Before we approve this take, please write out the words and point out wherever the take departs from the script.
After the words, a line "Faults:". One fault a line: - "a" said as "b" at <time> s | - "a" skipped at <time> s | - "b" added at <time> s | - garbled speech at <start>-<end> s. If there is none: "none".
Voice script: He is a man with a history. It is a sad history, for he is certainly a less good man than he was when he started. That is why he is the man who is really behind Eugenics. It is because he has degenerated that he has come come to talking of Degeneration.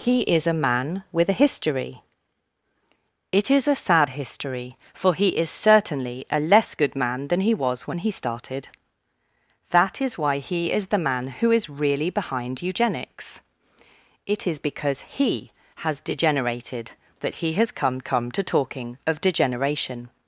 He is a man with a history. It is a sad history, for he is certainly a less good man than he was when he started. That is why he is the man who is really behind Eugenics. It is because he has degenerated that he has come come to talking of Degeneration.
Faults:
none